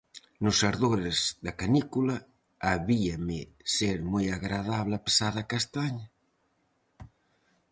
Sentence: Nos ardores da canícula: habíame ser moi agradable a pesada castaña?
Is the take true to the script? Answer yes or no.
yes